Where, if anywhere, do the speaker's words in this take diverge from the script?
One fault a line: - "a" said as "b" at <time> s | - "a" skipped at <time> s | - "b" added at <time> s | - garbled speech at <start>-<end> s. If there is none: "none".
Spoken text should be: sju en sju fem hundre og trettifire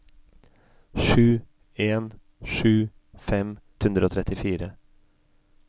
none